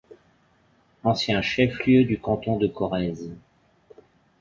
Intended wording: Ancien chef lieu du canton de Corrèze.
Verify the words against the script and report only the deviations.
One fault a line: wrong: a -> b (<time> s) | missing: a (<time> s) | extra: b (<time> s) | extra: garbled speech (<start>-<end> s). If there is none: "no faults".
no faults